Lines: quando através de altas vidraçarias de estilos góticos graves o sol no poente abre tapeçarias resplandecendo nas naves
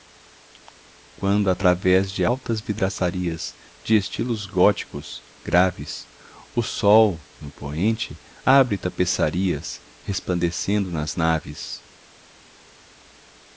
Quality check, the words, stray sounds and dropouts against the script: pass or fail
pass